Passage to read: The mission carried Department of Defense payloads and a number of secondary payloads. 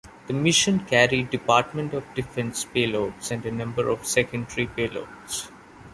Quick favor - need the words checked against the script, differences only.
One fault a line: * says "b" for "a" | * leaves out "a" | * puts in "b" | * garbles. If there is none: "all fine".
all fine